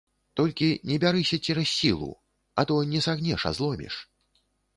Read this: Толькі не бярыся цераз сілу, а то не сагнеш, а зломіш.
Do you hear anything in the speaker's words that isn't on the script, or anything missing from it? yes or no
no